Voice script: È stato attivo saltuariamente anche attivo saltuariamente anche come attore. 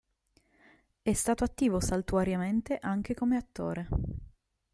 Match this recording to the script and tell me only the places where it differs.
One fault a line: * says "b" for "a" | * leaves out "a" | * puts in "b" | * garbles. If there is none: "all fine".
* leaves out "attivo saltuariamente anche"